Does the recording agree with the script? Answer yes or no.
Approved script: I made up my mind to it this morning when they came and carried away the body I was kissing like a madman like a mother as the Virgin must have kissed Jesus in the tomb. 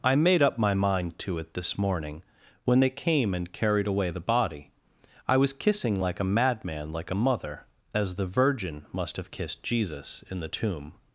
yes